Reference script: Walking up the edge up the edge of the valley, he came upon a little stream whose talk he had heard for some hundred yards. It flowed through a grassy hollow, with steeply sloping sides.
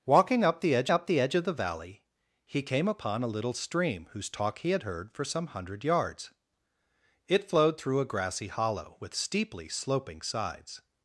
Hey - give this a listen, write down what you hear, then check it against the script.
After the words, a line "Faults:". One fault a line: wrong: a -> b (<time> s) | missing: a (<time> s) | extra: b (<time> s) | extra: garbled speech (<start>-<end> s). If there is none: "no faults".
Walking up the edge up the edge of the valley, he came upon a little stream whose talk he had heard for some hundred yards. It flowed through a grassy hollow, with steeply sloping sides.
Faults:
no faults